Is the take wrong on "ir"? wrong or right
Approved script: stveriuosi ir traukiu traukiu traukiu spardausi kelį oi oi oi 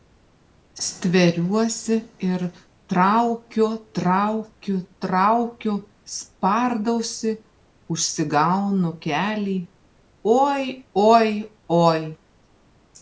right